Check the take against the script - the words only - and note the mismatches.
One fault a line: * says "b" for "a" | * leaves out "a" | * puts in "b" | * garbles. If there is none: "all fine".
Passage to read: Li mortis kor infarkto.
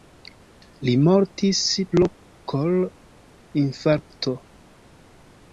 * puts in "pro"